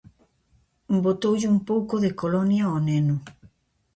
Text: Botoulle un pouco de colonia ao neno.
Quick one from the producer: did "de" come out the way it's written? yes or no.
yes